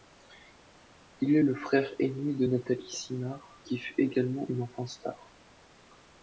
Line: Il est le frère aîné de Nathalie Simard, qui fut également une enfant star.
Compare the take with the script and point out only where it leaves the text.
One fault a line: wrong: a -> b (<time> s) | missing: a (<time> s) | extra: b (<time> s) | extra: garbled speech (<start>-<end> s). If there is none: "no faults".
no faults